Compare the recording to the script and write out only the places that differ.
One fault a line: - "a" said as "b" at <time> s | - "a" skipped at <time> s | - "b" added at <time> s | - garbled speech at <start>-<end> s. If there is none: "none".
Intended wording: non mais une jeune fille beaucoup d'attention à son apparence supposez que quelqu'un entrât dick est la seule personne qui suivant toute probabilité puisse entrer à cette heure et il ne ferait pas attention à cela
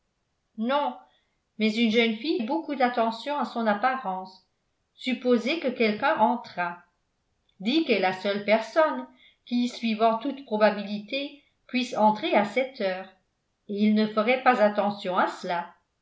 none